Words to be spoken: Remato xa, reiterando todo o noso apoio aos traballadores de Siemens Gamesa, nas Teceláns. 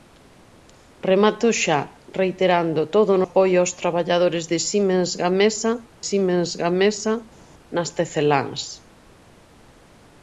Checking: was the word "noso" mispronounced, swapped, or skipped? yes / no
yes